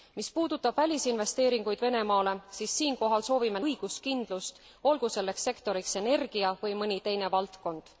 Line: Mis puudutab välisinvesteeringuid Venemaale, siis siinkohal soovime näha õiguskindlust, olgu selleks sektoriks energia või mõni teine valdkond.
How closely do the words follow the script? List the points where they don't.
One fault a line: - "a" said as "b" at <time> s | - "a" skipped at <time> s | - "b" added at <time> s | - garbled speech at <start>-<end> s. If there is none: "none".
- "näha" skipped at 3.6 s